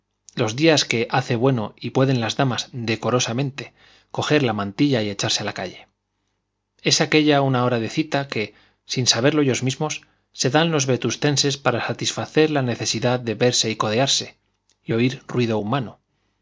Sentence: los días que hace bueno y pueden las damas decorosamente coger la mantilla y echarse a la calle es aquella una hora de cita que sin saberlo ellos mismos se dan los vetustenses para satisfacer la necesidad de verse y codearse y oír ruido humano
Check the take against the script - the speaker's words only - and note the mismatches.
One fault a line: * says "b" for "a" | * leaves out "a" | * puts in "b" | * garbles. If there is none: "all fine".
all fine